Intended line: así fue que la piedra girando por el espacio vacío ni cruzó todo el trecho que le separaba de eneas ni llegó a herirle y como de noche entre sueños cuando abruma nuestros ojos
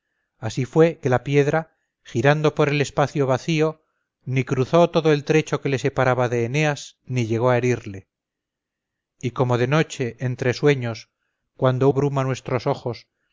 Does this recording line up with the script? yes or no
yes